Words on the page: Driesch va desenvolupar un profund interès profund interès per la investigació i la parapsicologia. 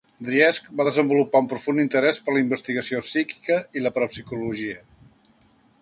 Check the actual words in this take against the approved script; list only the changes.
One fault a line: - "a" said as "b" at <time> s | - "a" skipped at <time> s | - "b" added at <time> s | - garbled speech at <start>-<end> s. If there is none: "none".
- "profund interès" skipped at 2.2 s
- "psíquica" added at 3.1 s